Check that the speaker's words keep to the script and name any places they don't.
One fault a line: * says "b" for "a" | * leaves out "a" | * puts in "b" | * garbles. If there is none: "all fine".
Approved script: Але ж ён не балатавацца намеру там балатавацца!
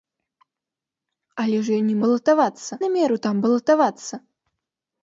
all fine